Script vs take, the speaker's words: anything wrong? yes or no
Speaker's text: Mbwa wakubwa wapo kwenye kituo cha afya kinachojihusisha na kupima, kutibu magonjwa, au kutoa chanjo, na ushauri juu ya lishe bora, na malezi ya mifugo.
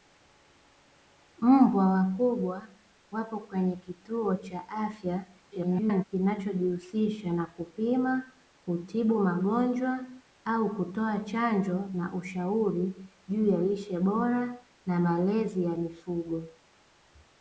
yes